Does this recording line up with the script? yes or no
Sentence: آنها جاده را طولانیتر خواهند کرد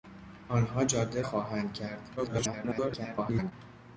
no